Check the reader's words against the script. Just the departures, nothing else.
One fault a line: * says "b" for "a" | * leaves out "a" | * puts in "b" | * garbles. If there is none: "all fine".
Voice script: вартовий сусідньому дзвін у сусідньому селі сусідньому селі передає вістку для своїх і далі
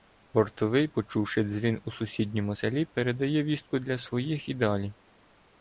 * says "почувши" for "сусідньому"
* leaves out "сусідньому селі"